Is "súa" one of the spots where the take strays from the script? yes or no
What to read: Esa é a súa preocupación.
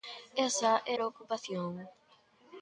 yes